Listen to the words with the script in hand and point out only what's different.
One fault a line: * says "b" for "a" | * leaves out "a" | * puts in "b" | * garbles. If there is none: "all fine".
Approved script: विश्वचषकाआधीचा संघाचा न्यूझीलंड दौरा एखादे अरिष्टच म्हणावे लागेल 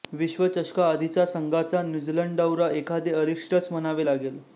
all fine